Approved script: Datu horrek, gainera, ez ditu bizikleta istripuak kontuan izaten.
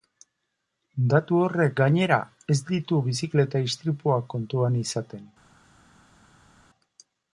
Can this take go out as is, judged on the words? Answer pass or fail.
pass